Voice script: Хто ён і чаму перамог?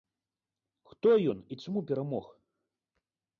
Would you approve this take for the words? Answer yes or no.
yes